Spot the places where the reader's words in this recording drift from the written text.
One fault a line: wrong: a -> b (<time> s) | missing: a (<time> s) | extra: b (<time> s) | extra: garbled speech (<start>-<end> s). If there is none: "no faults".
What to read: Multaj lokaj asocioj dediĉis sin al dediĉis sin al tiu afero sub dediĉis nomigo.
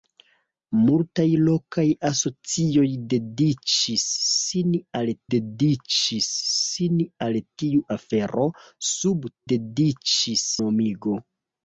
no faults